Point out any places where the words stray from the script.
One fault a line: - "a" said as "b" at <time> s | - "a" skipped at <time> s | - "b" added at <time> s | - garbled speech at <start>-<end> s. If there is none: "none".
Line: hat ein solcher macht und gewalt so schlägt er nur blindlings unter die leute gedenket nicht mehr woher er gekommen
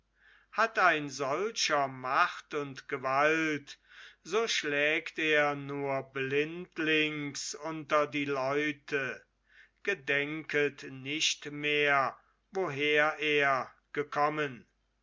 none